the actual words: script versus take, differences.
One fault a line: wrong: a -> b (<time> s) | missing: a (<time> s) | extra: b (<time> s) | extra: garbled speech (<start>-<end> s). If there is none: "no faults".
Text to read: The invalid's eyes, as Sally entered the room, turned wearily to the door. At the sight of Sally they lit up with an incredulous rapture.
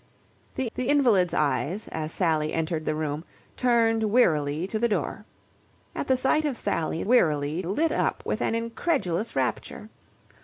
extra: the (0.7 s)
wrong: they -> wearily (7.1 s)